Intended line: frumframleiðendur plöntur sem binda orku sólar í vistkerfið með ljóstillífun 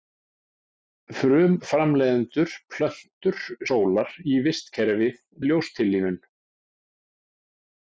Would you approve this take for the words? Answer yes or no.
no